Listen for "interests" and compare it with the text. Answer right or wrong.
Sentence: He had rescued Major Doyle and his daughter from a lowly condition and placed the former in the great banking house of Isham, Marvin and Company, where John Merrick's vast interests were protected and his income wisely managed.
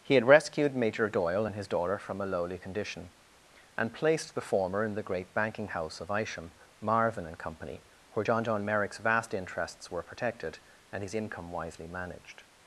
right